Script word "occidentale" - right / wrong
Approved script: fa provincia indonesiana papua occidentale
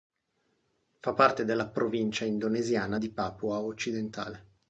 right